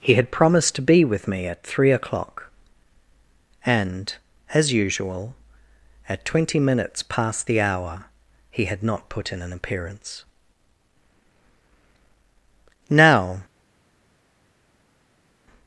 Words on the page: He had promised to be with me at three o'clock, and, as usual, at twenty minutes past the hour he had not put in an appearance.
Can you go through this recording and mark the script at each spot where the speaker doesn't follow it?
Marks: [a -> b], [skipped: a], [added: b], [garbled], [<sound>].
He had promised to be with me at three o'clock, and, as usual, at twenty minutes past the hour he had not put in an appearance. [added: Now]